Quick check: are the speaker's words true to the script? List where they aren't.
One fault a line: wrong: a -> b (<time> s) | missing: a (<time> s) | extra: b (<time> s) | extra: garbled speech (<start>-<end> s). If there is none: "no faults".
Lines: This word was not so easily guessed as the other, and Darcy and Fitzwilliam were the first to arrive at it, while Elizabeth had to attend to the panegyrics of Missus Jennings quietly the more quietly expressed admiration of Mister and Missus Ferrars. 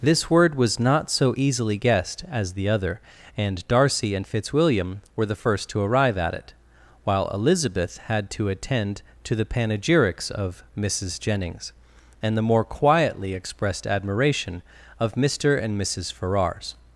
wrong: quietly -> and (12.2 s)